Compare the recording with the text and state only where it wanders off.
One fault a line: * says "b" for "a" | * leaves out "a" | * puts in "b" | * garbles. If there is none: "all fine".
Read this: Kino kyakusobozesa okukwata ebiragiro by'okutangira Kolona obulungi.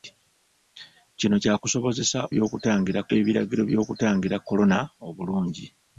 * says "by'okutangira" for "okukwata"